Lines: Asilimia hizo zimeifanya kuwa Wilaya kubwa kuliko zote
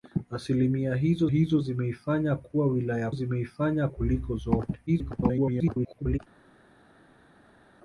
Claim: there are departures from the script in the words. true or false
true